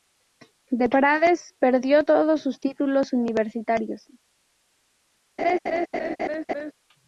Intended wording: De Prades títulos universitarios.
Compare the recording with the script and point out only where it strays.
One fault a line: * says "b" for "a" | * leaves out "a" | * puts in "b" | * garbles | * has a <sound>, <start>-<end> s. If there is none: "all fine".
* puts in "perdió todos sus"
* has a laugh, 5.4-6.7 s